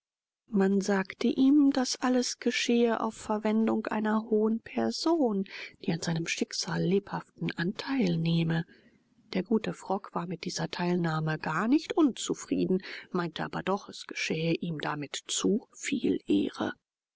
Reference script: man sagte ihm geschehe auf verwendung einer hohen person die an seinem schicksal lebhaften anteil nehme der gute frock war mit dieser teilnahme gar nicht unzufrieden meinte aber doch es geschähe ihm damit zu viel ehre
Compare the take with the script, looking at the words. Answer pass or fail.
fail